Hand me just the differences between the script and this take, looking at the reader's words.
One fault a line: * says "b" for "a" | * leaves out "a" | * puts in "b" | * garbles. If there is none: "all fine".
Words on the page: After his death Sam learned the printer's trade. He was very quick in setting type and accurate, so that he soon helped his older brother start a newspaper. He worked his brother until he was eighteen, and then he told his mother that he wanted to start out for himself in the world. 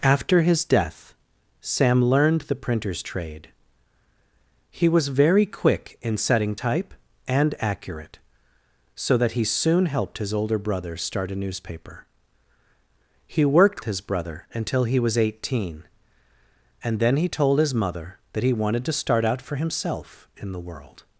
all fine